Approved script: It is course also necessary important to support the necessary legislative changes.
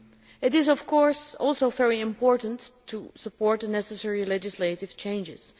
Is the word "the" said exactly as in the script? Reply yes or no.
yes